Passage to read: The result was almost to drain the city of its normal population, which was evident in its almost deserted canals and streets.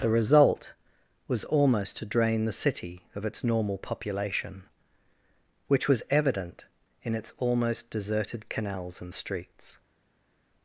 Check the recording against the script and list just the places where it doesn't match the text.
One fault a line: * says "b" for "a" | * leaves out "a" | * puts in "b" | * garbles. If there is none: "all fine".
all fine